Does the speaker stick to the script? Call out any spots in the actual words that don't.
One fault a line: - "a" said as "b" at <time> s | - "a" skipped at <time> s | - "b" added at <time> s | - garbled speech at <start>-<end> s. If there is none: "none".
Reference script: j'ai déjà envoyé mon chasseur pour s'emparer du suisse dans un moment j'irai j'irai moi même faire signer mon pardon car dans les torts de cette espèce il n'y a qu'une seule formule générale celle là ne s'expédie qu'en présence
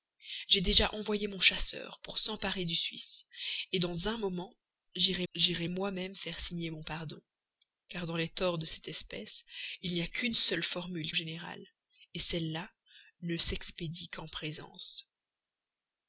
none